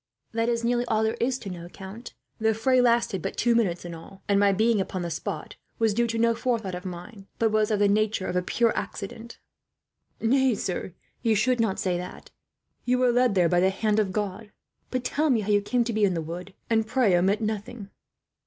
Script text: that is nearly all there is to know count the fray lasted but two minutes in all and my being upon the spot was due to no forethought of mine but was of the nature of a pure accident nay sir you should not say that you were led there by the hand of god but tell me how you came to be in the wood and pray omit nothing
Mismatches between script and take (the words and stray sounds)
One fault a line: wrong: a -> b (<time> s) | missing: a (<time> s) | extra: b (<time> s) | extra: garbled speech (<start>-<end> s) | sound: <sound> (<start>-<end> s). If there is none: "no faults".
no faults